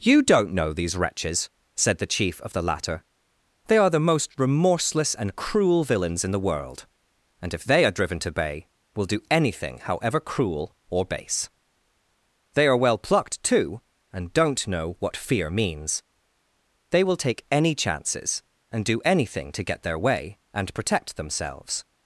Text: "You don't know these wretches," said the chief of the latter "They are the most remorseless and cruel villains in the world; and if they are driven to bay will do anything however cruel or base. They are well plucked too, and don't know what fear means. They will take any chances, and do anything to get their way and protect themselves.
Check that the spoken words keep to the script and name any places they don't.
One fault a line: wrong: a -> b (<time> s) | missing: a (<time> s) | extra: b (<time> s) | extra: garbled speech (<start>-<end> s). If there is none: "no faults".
no faults